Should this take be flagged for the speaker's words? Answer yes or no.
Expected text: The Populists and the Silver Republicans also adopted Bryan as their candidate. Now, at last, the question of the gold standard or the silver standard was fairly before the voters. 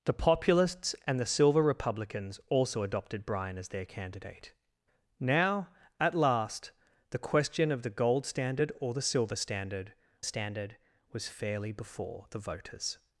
yes